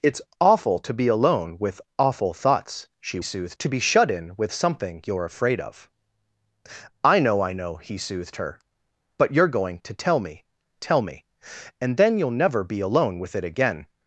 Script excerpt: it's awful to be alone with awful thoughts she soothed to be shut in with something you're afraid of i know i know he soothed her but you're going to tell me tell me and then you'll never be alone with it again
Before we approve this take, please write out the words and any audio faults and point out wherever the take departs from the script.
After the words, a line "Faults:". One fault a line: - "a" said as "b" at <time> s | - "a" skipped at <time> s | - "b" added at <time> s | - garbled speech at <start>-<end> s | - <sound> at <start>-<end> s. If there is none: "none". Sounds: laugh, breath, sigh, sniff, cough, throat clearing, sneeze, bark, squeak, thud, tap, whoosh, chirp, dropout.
it's awful to be alone with awful thoughts she soothed to be shut in with something you're afraid of i know i know he soothed her but you're going to tell me tell me and then you'll never be alone with it again
Faults:
none